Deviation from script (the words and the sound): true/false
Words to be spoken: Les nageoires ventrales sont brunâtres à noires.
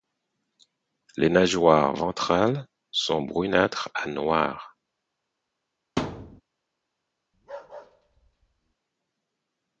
true